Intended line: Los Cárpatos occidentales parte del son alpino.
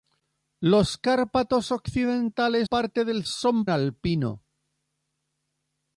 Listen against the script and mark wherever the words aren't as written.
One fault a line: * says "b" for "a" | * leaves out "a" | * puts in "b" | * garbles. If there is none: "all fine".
all fine